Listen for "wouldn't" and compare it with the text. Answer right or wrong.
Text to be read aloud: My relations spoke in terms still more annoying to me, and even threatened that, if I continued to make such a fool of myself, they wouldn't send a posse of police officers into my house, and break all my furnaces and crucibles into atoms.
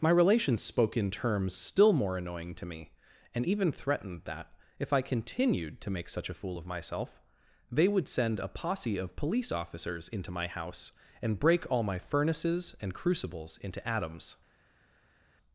wrong